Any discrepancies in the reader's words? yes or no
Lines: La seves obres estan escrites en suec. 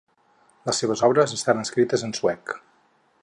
yes